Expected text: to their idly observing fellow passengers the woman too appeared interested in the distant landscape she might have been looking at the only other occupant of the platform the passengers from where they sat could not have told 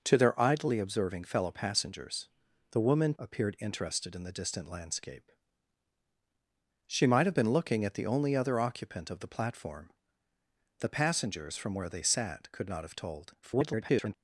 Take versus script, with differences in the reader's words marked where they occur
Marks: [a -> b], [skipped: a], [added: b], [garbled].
to their idly observing fellow passengers the woman [skipped: too] appeared interested in the distant landscape she might have been looking at the only other occupant of the platform the passengers from where they sat could not have told [garbled]